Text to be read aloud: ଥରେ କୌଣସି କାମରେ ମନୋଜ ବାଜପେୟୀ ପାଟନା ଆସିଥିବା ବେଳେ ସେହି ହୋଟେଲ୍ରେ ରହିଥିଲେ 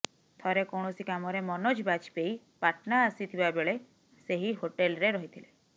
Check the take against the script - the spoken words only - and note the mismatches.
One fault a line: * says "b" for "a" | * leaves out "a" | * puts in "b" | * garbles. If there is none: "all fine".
all fine